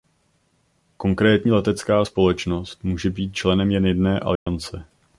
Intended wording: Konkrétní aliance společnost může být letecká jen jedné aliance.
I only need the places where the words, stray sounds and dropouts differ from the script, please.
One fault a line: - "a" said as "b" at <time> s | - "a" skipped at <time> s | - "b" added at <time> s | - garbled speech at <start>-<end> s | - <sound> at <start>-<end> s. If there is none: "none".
- "aliance" said as "letecká" at 1.5 s
- "letecká" said as "členem" at 3.3 s
- dropout at 4.4-4.5 s